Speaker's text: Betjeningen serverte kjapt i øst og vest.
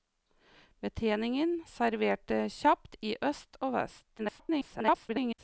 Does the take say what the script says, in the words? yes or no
no